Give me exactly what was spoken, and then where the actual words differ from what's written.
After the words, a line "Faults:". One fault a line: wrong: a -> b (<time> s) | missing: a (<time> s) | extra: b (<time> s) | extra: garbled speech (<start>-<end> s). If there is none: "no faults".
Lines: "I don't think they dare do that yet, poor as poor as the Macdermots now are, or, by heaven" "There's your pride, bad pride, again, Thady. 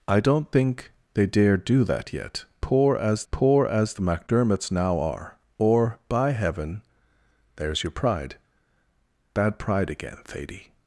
"I don't think they dare do that yet, poor as poor as the Macdermots now are, or, by heaven" "There's your pride, bad pride, again, Thady.
Faults:
no faults